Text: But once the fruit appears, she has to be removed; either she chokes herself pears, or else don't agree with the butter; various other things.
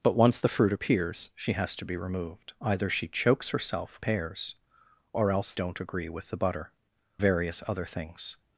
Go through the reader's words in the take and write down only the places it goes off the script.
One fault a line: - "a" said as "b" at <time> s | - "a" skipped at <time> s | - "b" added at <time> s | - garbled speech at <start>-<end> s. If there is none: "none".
none